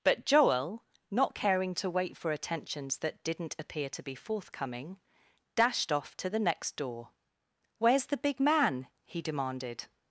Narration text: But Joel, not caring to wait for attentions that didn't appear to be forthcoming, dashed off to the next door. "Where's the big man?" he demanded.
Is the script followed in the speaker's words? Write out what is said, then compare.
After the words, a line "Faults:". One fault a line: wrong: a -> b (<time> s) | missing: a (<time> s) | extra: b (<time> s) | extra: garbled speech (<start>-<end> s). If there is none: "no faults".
But Joel, not caring to wait for attentions that didn't appear to be forthcoming, dashed off to the next door. "Where's the big man?" he demanded.
Faults:
no faults